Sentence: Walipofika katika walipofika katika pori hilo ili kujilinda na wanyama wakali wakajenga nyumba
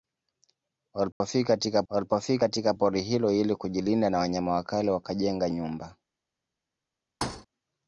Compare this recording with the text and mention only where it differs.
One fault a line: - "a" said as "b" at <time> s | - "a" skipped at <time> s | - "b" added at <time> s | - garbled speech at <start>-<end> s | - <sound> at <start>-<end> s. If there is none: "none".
- dropout at 1.1-1.2 s
- thud at 7.2-7.5 s